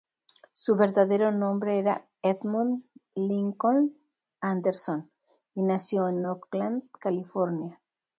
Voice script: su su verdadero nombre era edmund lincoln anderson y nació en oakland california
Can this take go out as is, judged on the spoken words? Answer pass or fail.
fail